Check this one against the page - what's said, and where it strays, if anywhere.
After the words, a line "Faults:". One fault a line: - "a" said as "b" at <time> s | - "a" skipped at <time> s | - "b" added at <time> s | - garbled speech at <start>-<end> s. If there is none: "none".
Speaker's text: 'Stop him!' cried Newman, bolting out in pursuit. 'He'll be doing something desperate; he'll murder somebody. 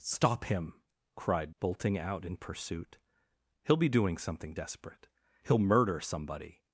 'Stop him!' cried Bolting out in pursuit. 'He'll be doing something desperate; he'll murder somebody.
Faults:
- "Newman" skipped at 1.6 s